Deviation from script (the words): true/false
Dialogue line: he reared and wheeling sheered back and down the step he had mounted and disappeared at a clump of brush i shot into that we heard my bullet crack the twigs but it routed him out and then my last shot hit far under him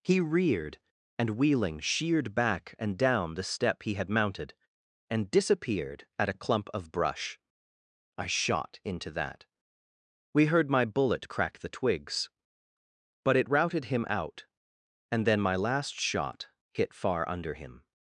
false